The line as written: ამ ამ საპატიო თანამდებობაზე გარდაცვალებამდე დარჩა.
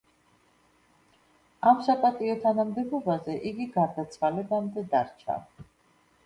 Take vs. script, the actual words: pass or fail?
fail